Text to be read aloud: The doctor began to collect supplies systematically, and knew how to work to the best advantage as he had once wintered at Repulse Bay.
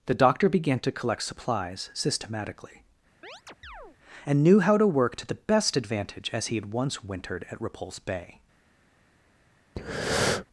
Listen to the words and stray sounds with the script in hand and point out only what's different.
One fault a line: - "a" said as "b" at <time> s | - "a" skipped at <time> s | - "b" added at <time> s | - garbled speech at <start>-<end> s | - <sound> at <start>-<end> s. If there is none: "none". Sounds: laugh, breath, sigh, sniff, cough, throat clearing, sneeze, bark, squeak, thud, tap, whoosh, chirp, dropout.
- chirp at 3.2-4.0 s
- breath at 9.8-10.5 s